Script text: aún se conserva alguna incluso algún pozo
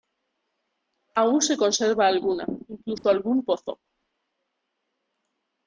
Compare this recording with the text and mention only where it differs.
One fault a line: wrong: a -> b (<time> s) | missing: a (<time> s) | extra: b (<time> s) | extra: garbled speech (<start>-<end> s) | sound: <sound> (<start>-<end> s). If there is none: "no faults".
sound: dropout (3.0-3.0 s)